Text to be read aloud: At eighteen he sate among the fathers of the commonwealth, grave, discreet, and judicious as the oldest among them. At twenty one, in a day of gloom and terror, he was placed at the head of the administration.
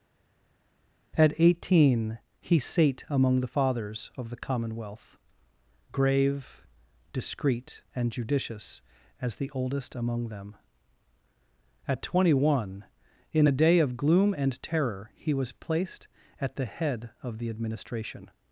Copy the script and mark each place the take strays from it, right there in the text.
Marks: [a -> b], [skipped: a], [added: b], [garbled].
At eighteen he sate among the fathers of the commonwealth, grave, discreet, and judicious as the oldest among them. At twenty one, in a day of gloom and terror, he was placed at the head of the administration.